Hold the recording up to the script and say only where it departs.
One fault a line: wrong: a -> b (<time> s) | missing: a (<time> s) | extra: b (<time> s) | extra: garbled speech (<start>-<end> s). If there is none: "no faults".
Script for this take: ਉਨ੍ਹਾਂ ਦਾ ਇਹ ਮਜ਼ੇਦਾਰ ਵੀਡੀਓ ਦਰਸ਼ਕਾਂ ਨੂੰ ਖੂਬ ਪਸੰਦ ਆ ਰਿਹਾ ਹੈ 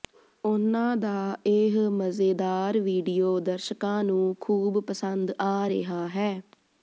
no faults